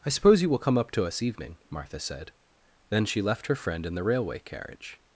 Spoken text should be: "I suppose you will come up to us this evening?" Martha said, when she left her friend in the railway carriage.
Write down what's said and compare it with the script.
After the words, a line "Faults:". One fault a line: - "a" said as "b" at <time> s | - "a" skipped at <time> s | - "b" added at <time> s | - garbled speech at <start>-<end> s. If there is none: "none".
"I suppose you will come up to us evening?" Martha said, then she left her friend in the railway carriage.
Faults:
- "this" skipped at 1.2 s
- "when" said as "then" at 2.9 s